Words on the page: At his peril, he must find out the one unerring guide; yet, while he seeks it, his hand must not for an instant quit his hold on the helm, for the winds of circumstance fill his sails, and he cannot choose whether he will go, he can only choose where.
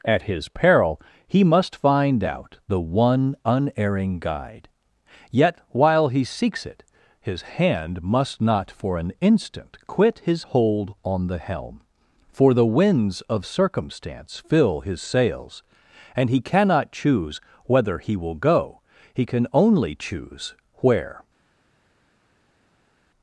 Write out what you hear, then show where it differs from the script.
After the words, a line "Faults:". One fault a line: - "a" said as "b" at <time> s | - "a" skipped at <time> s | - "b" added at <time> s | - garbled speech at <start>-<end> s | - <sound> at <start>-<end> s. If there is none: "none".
At his peril, he must find out the one unerring guide; yet, while he seeks it, his hand must not for an instant quit his hold on the helm, for the winds of circumstance fill his sails, and he cannot choose whether he will go, he can only choose where.
Faults:
none